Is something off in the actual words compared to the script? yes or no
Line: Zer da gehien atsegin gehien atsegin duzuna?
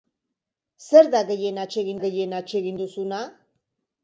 no